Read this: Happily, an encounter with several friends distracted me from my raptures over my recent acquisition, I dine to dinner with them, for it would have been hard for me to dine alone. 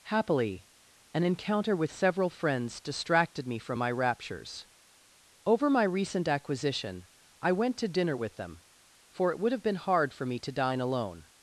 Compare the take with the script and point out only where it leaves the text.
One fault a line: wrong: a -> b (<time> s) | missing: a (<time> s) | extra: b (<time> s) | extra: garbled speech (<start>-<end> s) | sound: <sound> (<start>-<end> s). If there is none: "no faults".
wrong: dine -> went (7.5 s)